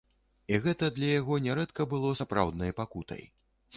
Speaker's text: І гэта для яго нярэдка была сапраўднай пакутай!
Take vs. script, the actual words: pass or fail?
fail